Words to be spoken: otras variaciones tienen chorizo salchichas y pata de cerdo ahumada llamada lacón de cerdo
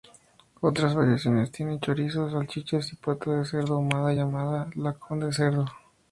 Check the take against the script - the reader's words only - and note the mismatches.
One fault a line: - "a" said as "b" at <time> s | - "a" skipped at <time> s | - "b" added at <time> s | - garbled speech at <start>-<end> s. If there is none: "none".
none